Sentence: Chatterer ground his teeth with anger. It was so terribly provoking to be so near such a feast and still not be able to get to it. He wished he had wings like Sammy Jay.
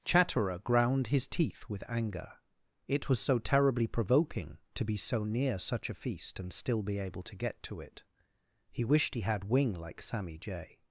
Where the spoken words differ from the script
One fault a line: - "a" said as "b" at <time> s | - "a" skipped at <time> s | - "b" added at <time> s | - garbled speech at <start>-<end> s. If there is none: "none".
- "not" skipped at 6.8 s
- "wings" said as "wing" at 9.4 s